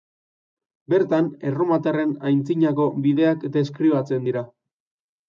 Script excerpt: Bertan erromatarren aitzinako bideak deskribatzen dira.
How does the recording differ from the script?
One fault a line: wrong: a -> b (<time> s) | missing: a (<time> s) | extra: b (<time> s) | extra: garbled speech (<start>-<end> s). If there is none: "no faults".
no faults